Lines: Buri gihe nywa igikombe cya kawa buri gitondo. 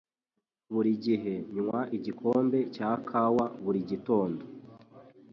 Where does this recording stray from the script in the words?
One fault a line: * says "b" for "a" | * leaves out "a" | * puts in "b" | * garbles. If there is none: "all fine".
all fine